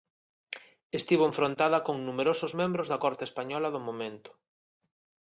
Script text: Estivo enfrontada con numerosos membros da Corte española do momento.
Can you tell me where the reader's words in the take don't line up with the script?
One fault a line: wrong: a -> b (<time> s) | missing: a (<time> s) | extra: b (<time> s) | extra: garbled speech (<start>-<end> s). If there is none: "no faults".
no faults